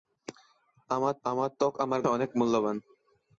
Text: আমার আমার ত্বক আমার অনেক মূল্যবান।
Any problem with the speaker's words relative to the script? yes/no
no